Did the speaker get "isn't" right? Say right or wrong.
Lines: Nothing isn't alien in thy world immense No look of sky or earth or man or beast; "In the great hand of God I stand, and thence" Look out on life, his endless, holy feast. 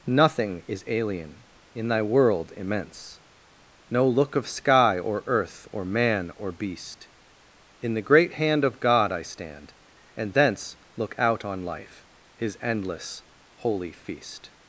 wrong